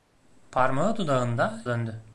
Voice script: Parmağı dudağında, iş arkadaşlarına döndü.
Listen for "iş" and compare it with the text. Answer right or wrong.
wrong